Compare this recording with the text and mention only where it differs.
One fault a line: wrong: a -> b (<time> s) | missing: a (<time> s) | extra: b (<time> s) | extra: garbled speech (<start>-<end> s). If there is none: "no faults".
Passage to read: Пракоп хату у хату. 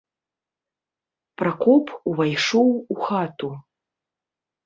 wrong: хату -> увайшоў (2.1 s)